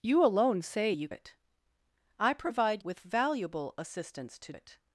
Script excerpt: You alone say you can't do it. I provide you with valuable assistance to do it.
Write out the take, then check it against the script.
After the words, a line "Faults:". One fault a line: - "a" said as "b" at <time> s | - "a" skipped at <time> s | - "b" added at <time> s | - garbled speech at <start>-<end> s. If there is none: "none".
You alone say you it. I provide with valuable assistance to it.
Faults:
- "can't do" skipped at 1.1 s
- "you" skipped at 2.8 s
- "do" skipped at 4.5 s